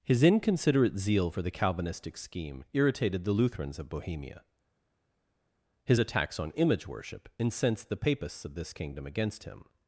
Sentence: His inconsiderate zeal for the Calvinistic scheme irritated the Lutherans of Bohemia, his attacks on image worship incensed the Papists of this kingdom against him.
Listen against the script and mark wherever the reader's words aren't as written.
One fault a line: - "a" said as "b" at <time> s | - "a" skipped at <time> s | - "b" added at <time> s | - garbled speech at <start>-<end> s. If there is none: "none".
none